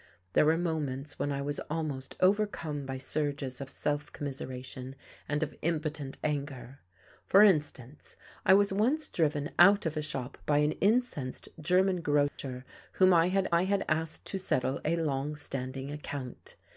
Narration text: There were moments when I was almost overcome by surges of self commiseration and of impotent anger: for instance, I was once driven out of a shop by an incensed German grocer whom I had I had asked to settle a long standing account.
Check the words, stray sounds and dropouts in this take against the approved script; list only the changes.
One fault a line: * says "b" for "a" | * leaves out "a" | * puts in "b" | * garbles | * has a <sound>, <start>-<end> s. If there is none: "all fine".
* has a dropout, 12.3-12.4 s